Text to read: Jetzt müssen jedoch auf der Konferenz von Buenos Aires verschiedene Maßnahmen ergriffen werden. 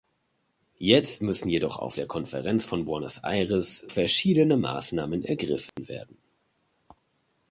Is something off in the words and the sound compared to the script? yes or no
yes